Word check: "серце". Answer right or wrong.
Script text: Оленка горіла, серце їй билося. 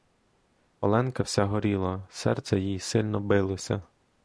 right